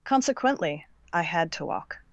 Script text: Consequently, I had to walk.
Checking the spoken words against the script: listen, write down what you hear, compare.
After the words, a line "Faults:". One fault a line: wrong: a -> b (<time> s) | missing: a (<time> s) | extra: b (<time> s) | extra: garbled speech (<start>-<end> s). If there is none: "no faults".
Consequently, I had to walk.
Faults:
no faults